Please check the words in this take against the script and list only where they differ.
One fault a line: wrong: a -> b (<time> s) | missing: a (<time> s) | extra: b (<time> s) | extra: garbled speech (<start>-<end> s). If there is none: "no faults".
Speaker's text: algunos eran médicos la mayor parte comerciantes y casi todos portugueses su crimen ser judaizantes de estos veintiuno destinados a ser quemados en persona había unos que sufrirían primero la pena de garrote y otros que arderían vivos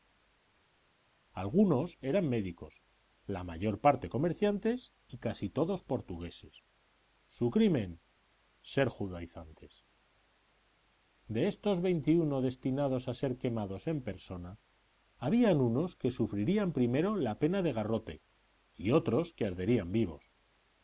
no faults